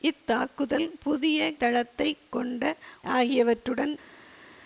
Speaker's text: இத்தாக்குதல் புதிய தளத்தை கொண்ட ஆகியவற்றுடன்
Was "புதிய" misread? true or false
false